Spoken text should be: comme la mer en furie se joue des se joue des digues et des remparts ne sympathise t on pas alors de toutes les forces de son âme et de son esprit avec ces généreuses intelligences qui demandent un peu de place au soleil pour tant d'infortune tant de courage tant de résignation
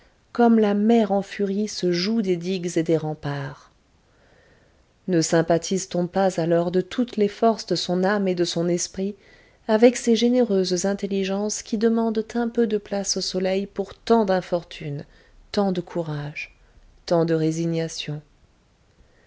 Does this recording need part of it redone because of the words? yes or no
yes